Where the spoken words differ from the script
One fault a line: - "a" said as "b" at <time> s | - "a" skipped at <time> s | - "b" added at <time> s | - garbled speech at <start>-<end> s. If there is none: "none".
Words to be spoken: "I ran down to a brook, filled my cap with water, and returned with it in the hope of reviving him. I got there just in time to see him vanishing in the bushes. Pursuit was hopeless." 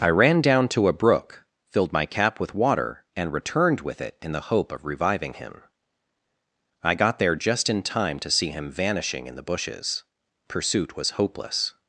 none